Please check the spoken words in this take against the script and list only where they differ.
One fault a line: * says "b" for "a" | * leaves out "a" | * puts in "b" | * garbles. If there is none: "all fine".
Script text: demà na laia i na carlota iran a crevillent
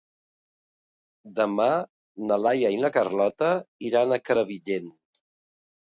all fine